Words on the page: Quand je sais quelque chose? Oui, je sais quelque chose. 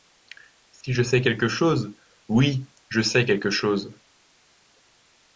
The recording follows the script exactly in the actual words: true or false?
false